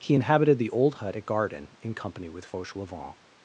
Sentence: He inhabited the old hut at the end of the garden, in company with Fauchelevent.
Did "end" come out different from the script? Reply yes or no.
yes